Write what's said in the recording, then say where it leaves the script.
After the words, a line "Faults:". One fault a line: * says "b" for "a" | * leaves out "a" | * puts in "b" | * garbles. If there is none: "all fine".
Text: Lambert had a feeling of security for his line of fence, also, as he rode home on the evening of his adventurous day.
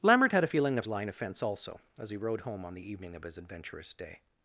Lambert had a feeling of line of fence, also, as he rode home on the evening of his adventurous day.
Faults:
* leaves out "security for his"